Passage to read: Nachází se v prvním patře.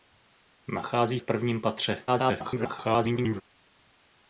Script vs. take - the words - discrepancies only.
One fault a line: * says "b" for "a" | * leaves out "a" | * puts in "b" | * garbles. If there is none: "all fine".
* leaves out "se"
* garbles